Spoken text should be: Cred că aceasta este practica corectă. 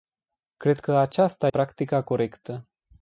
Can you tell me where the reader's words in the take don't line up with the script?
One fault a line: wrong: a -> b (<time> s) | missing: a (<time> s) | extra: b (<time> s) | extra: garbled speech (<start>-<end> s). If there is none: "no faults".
missing: este (1.5 s)